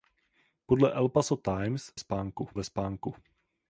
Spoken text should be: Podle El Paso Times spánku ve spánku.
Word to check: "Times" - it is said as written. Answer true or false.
true